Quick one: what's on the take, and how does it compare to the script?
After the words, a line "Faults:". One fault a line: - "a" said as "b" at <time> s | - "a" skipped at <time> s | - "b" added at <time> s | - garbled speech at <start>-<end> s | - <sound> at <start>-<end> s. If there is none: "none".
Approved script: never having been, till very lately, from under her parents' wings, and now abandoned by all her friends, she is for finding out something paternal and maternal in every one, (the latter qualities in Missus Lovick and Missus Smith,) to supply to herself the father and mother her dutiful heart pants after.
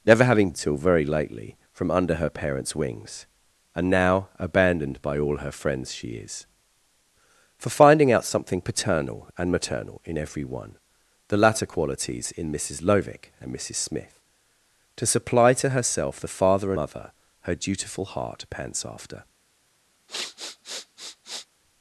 never having till very lately, from under her parents' wings, and now abandoned by all her friends, she is for finding out something paternal and maternal in every one, (the latter qualities in Missus Lovick and Missus Smith,) to supply to herself the father mother her dutiful heart pants after.
Faults:
- "been" skipped at 0.5 s
- "and" skipped at 16.7 s
- sniff at 20.1-21.5 s